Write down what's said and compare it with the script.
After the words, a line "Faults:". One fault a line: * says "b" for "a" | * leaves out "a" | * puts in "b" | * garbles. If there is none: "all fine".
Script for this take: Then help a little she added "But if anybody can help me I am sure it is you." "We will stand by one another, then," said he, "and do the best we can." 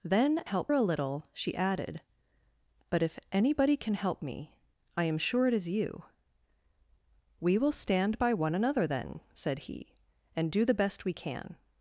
Then help a little she added "But if anybody can help me I am sure it is you." "We will stand by one another, then," said he, "and do the best we can."
Faults:
all fine